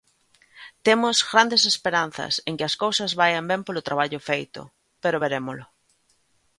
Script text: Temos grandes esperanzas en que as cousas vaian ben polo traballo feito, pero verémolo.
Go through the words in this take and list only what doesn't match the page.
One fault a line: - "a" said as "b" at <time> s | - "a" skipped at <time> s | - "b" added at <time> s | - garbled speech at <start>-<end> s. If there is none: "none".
none